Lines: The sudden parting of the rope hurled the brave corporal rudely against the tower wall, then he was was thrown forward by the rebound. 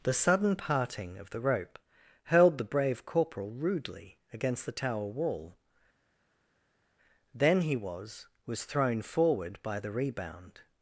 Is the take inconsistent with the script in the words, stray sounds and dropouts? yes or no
no